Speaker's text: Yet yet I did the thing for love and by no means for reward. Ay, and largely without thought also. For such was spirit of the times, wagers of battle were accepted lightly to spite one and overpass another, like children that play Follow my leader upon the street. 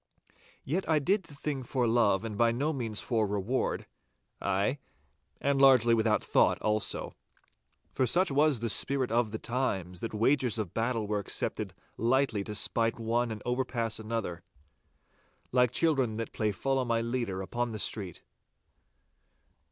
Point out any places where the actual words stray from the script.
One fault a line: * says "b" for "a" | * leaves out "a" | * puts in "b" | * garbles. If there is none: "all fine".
* leaves out "yet"
* puts in "the"
* puts in "that"